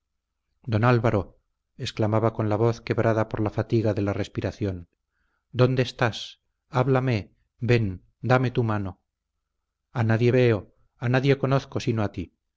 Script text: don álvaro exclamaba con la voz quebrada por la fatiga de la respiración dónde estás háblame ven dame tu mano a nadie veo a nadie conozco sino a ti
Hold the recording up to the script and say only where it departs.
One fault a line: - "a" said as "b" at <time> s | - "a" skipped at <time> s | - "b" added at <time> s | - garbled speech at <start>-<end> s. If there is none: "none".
none